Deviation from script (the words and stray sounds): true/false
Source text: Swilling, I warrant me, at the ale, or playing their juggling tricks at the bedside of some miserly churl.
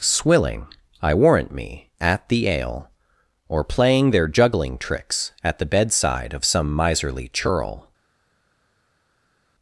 false